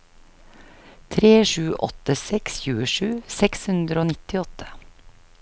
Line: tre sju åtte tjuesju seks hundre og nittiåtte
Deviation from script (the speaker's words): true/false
true